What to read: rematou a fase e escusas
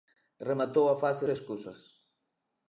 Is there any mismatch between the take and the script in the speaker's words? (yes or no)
no